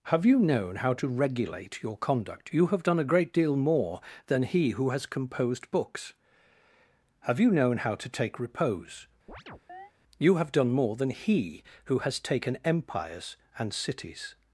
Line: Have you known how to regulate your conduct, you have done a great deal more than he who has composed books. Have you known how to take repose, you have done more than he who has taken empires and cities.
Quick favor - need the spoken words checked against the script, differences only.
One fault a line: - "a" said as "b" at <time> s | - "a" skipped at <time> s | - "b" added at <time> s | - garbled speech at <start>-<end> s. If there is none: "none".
none